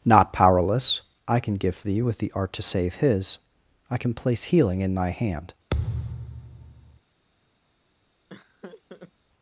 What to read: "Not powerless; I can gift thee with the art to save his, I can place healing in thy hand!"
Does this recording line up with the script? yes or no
yes